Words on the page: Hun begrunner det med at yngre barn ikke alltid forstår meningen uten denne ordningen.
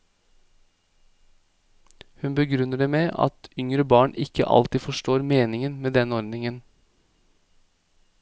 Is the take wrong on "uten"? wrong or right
wrong